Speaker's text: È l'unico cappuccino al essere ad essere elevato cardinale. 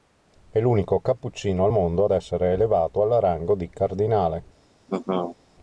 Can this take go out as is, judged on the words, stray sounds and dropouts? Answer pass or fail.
fail